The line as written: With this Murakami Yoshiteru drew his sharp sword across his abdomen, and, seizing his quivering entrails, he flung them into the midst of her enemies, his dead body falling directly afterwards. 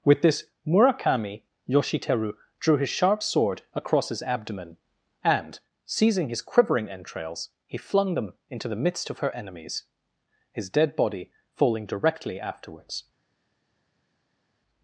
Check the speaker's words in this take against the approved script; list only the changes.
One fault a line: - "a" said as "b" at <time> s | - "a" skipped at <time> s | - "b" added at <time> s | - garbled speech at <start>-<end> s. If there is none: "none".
none